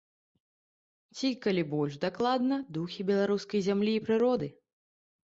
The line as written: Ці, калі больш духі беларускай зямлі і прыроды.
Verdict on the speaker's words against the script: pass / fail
fail